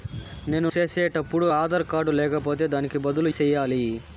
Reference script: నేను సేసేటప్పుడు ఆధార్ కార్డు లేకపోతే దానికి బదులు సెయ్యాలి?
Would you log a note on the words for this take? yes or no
no